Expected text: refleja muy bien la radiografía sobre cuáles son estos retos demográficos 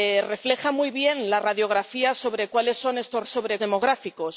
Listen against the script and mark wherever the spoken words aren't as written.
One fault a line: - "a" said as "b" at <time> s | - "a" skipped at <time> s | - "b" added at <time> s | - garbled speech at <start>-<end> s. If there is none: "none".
- "retos" said as "sobre" at 3.2 s